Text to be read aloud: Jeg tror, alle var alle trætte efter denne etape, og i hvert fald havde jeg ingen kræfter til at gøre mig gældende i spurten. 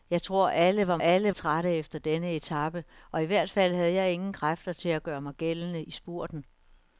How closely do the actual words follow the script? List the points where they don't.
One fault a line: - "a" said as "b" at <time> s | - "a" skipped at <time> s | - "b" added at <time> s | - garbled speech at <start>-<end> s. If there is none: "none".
none